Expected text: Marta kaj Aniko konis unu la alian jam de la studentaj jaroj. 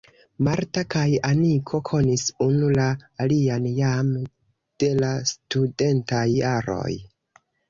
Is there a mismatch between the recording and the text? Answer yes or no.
no